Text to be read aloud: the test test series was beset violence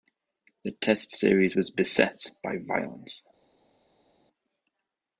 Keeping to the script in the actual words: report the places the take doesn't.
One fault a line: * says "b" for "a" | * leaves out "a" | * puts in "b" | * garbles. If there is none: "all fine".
* leaves out "test"
* puts in "by"